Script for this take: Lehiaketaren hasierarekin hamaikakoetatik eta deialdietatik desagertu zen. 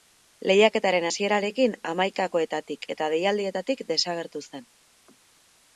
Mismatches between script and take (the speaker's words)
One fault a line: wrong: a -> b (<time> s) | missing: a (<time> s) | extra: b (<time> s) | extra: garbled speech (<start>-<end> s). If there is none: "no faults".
no faults